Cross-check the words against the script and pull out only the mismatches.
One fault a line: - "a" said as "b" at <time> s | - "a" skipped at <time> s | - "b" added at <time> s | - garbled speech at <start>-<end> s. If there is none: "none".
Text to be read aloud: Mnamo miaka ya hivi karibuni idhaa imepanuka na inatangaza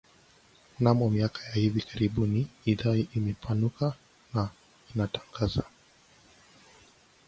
none